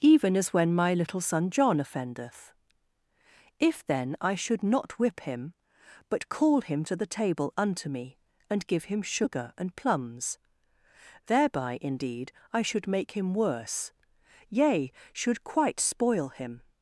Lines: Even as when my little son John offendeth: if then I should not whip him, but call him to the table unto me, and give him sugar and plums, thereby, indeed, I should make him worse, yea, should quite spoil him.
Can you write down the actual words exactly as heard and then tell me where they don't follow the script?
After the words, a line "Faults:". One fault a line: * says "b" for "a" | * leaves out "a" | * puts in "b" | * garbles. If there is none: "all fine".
Even as when my little son John offendeth: if then I should not whip him, but call him to the table unto me, and give him sugar and plums, thereby, indeed, I should make him worse, yea, should quite spoil him.
Faults:
all fine